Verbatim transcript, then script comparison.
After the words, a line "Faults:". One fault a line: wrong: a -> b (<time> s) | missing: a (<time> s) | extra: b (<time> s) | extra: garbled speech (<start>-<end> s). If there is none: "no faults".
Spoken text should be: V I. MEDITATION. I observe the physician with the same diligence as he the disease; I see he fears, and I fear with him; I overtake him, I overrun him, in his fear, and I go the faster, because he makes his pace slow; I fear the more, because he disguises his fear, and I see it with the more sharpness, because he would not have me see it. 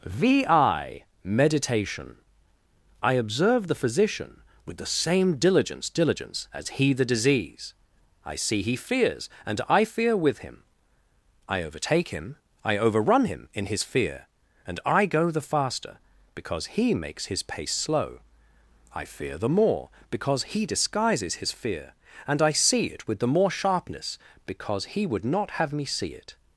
V I. MEDITATION. I observe the physician with the same diligence diligence as he the disease; I see he fears, and I fear with him; I overtake him, I overrun him, in his fear, and I go the faster, because he makes his pace slow; I fear the more, because he disguises his fear, and I see it with the more sharpness, because he would not have me see it.
Faults:
extra: diligence (5.9 s)